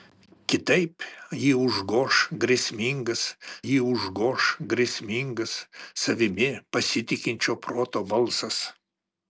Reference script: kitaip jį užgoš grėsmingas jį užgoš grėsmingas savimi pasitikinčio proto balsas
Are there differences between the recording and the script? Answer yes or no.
no